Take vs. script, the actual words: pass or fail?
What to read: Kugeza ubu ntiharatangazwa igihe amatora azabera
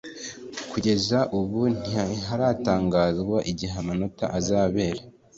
pass